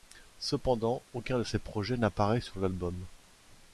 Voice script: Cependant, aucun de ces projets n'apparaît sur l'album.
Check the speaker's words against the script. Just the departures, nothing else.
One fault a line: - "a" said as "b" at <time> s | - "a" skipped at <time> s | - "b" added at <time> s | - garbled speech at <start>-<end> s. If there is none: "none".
none